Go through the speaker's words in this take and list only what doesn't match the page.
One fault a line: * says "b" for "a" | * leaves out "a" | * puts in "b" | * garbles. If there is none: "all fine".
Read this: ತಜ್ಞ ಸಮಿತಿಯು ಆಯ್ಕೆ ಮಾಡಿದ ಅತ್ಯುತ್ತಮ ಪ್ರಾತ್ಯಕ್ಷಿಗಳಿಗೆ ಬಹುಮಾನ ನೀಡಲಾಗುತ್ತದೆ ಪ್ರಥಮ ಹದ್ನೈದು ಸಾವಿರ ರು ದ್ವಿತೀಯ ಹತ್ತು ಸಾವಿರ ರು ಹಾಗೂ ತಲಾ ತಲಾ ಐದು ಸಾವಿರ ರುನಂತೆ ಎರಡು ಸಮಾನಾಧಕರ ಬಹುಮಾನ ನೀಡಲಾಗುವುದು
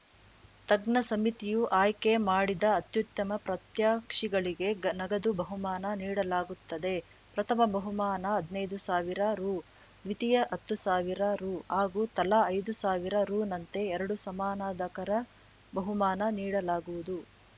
* puts in "ನಗದು"
* puts in "ಬಹುಮಾನ"
* leaves out "ತಲಾ"